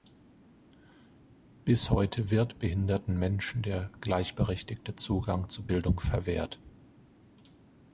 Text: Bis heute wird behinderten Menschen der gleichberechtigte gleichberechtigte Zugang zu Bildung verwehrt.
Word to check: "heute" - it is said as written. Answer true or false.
true